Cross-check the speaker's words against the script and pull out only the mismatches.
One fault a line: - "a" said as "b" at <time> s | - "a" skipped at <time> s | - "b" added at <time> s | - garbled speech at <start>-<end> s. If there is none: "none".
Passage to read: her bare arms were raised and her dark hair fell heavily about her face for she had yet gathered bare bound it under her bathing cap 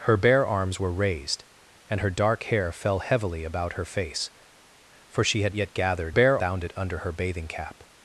none